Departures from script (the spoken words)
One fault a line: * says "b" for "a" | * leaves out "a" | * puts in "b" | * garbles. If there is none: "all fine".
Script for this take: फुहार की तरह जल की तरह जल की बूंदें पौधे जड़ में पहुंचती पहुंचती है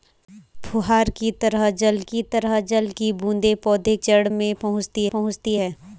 all fine